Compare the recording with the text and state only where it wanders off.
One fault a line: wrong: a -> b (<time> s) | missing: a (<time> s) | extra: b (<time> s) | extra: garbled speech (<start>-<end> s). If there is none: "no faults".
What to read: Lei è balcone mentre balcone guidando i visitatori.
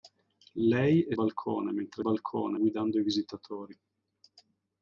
no faults